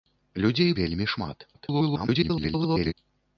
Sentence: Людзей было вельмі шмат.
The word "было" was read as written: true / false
false